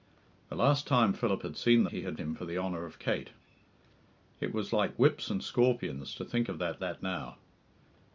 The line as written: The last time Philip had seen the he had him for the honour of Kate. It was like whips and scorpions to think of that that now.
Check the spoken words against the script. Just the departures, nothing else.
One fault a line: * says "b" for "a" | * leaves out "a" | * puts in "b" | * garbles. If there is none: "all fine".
all fine